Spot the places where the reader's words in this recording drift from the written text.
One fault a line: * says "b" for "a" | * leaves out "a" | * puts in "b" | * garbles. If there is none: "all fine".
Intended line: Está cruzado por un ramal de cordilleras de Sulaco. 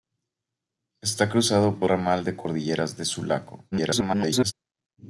* leaves out "un"
* garbles